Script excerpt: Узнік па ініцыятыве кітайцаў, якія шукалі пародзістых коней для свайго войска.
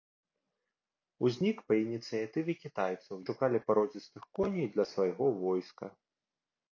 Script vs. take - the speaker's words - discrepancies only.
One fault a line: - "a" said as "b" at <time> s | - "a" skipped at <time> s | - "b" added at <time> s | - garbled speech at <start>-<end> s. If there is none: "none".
- "якія" skipped at 3.1 s